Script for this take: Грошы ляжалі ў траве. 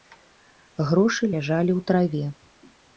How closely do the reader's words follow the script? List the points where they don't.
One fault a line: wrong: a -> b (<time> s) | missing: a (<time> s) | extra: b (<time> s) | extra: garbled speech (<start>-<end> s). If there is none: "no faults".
no faults